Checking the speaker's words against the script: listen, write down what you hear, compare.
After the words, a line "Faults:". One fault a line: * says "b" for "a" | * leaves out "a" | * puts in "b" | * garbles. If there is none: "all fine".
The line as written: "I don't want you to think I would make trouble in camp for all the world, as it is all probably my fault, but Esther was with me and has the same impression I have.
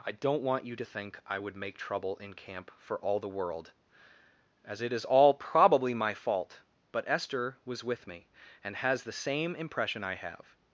"I don't want you to think I would make trouble in camp for all the world, as it is all probably my fault, but Esther was with me and has the same impression I have.
Faults:
all fine